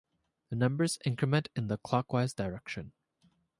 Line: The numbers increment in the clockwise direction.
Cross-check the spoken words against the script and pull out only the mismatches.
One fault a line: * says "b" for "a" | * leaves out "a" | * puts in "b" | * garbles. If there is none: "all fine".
all fine